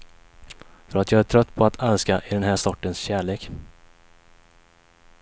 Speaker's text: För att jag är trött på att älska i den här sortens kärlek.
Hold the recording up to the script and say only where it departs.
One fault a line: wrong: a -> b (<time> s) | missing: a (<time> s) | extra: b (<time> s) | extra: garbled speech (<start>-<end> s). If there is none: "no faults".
no faults